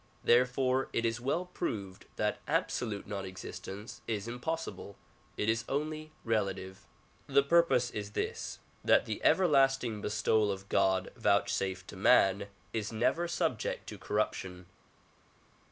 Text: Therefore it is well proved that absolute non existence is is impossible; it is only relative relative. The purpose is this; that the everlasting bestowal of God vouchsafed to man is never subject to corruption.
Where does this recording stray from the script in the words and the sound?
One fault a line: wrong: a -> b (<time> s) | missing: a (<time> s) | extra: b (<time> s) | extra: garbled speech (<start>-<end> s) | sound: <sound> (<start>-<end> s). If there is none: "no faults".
missing: is (4.3 s)
missing: relative (6.9 s)